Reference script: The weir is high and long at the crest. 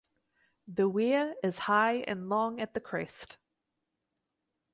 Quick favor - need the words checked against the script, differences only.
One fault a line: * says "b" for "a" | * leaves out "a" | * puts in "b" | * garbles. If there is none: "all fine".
all fine